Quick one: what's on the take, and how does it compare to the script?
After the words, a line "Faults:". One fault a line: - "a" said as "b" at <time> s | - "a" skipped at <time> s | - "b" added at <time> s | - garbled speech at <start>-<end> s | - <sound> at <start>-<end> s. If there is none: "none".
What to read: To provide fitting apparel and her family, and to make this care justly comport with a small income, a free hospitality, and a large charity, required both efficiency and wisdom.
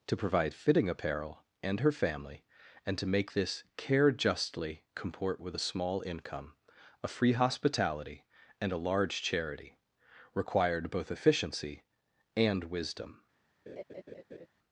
To provide fitting apparel and her family, and to make this care justly comport with a small income, a free hospitality, and a large charity, required both efficiency and wisdom.
Faults:
- laugh at 13.7-14.5 s